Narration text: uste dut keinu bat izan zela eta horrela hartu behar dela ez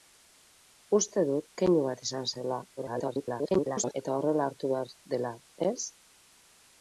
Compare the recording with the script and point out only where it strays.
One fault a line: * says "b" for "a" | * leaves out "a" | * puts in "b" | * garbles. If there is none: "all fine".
* garbles